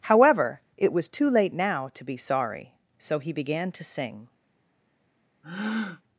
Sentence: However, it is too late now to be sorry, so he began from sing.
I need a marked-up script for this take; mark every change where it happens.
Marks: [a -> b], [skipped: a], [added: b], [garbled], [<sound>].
However, it [is -> was] too late now to be sorry, so he began [from -> to] sing. [breath]